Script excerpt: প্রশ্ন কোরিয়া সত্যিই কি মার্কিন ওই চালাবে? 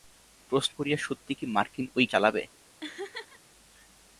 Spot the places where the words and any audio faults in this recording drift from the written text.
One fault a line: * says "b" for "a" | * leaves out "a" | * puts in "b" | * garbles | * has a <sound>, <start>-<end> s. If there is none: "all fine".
* has a laugh, 2.8-3.4 s